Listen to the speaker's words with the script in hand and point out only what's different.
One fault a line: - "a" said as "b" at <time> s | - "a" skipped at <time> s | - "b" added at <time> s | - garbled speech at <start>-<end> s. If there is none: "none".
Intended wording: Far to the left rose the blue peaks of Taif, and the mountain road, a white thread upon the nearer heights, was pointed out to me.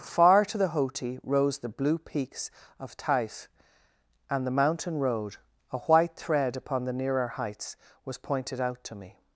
- "left" said as "hoti" at 0.7 s